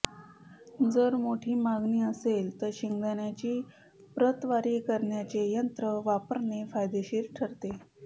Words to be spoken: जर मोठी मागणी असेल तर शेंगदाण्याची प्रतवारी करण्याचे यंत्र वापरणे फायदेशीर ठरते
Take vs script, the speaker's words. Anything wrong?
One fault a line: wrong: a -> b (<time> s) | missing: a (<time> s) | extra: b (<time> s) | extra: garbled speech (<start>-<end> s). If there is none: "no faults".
no faults